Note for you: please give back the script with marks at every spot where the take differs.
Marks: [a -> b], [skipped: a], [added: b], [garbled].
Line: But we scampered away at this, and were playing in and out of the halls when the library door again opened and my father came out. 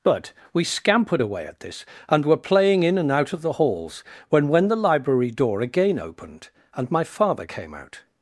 But we scampered away at this, and were playing in and out of the halls when [added: when] the library door again opened and my father came out.